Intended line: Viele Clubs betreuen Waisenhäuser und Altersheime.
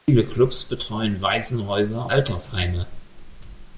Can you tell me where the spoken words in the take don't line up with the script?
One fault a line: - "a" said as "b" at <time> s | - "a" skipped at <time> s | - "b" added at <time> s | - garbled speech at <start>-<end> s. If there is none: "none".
- "und" skipped at 2.1 s